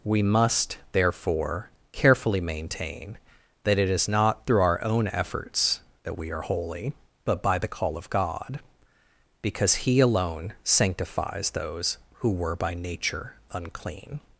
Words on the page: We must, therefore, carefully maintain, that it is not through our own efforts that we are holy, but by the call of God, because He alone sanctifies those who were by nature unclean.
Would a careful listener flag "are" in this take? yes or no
no